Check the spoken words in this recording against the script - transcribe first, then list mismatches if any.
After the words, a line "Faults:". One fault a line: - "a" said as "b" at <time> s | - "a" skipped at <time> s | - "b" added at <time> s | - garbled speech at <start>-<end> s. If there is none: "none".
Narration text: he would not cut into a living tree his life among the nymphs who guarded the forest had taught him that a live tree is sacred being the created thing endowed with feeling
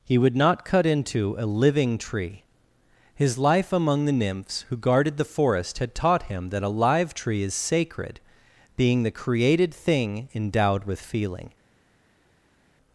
he would not cut into a living tree his life among the nymphs who guarded the forest had taught him that a live tree is sacred being the created thing endowed with feeling
Faults:
none